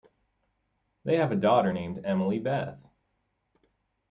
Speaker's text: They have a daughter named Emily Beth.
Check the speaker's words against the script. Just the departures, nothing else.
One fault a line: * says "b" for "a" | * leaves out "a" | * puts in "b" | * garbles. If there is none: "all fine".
all fine